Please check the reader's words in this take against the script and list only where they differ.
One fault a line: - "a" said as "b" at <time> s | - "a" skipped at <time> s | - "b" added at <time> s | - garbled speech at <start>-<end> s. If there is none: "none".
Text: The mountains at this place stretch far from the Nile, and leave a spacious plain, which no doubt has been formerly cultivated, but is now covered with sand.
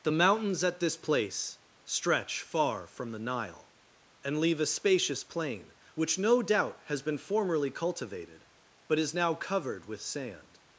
none